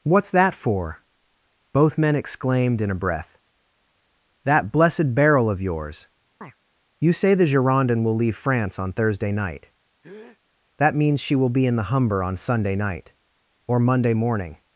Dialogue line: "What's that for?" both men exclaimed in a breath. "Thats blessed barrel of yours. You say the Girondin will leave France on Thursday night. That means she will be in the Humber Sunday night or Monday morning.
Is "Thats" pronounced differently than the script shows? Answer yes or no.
yes